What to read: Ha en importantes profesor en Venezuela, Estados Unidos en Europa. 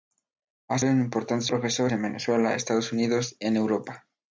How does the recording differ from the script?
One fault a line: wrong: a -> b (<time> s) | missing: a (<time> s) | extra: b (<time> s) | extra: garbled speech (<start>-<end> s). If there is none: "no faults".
no faults